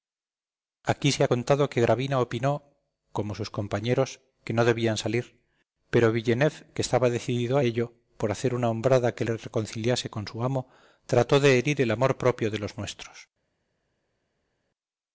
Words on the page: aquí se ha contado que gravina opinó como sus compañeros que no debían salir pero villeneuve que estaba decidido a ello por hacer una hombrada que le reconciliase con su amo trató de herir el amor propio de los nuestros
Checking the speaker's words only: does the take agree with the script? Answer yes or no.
yes